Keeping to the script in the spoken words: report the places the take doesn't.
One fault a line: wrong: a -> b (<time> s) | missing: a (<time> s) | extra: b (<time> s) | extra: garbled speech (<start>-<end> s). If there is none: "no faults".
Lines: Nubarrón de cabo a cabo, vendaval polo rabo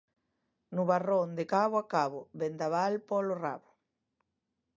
no faults